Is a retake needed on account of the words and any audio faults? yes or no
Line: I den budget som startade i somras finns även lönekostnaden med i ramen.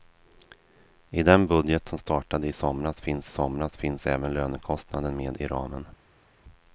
yes